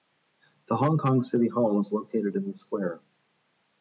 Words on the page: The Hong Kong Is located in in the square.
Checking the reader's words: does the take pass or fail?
fail